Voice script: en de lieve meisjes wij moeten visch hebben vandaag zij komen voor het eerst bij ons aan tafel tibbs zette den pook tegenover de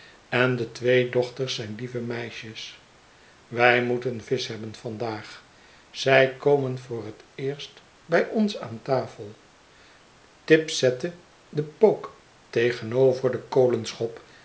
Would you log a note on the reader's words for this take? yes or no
yes